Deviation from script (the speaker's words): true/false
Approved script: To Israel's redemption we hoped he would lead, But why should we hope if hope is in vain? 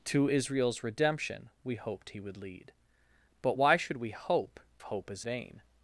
true